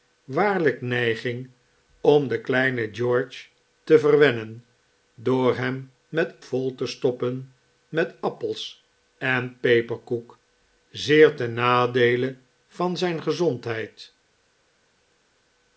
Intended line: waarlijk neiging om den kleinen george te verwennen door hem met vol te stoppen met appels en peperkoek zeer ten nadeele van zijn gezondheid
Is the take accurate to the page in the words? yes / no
yes